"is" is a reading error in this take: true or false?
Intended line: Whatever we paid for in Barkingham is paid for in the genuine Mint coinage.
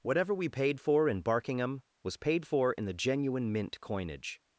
true